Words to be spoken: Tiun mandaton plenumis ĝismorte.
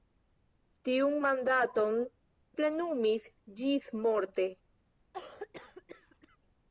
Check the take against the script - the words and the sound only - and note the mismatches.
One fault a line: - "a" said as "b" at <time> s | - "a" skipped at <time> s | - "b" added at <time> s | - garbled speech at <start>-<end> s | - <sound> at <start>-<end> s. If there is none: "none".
- cough at 5.1-6.4 s